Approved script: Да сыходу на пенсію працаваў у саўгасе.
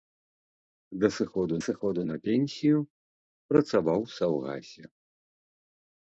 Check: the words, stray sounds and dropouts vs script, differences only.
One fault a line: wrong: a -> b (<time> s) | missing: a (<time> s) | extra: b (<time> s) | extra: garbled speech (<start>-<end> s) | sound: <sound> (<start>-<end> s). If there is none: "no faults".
extra: сыходу (1.7 s)